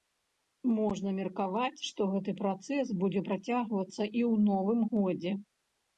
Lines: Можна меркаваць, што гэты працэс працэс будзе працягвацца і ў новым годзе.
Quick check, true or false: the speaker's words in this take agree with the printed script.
false